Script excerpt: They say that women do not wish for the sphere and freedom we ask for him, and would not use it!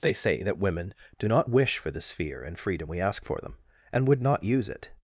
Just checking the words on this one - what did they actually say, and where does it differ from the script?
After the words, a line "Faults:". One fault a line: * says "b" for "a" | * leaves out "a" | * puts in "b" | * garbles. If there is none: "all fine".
They say that women do not wish for the sphere and freedom we ask for them, and would not use it!
Faults:
* says "them" for "him"